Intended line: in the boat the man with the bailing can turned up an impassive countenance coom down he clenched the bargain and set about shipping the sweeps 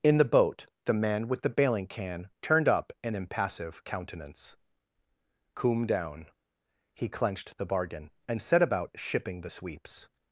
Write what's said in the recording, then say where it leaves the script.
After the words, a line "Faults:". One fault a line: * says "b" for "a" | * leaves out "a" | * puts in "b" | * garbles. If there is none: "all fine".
in the boat the man with the bailing can turned up an impassive countenance coom down he clenched the bargain and set about shipping the sweeps
Faults:
all fine